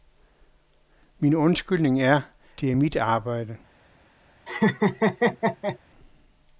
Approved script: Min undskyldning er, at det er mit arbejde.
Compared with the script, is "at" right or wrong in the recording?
wrong